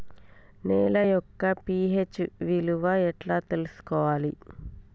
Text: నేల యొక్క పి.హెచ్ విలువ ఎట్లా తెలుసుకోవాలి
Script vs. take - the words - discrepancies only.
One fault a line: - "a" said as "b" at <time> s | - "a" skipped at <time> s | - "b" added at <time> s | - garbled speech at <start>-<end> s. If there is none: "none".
none